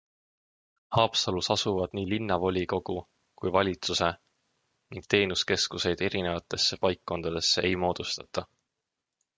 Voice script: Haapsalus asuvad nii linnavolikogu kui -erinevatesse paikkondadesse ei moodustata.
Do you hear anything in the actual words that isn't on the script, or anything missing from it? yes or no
yes